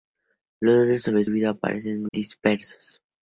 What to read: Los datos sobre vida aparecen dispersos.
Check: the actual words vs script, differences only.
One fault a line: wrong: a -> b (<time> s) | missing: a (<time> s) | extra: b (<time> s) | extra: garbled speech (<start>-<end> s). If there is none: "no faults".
no faults